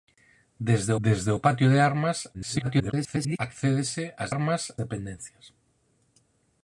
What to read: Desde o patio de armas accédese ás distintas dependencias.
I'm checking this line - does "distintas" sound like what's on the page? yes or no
no